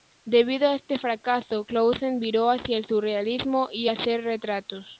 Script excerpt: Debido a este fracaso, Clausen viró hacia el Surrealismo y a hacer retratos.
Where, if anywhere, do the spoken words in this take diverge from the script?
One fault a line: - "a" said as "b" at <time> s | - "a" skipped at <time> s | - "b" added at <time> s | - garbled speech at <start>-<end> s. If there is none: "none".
none